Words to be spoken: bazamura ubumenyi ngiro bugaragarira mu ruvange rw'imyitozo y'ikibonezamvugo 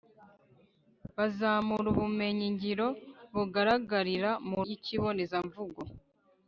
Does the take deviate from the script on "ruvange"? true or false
true